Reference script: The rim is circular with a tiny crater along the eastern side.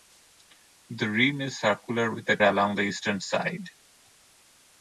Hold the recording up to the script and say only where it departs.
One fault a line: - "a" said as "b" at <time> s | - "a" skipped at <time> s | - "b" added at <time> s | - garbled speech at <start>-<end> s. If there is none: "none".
- "tiny crater" skipped at 2.4 s